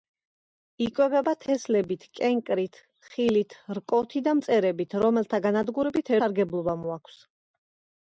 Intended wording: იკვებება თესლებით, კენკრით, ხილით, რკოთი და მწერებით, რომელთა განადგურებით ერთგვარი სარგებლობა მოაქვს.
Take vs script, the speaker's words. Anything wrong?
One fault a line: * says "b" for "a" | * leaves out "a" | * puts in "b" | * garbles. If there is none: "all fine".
* leaves out "ერთგვარი"